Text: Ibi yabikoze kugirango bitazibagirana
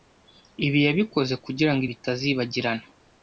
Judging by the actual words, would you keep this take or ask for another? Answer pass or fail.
pass